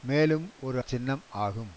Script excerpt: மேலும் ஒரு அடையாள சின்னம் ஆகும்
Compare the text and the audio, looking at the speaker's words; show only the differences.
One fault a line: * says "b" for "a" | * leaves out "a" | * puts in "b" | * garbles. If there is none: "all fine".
* leaves out "அடையாள"